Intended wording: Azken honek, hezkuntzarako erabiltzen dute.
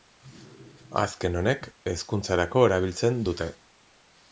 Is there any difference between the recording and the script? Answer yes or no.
no